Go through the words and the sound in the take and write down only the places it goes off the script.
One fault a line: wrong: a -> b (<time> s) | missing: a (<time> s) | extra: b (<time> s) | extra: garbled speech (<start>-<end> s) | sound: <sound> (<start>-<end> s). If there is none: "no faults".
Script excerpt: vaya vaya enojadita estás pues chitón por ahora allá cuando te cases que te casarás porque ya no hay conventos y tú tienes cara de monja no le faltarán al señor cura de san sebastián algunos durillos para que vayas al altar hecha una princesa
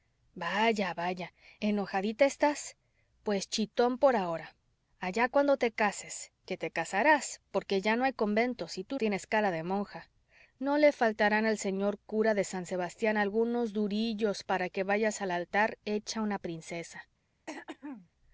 sound: throat clearing (17.5-18.1 s)